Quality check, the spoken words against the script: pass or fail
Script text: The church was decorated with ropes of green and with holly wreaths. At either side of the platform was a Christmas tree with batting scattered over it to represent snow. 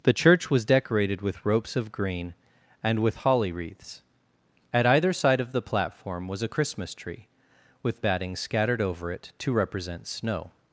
pass